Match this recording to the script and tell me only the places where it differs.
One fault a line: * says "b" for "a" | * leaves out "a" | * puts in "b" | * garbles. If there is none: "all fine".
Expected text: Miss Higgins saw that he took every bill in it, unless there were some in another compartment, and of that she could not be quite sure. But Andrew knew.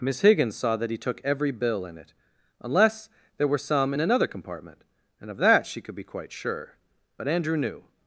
* leaves out "not"